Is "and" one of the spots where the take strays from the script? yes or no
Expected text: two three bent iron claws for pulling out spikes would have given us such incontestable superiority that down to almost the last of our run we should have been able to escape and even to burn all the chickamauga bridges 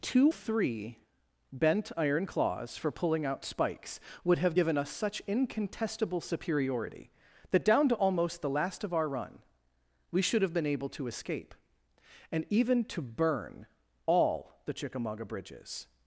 no